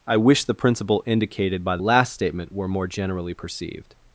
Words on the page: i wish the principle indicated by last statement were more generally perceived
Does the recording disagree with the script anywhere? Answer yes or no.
no